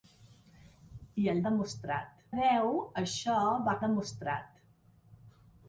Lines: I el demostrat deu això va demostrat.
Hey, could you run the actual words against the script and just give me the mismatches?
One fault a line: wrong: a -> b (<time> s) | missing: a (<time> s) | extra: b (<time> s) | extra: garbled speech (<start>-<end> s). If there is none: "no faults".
no faults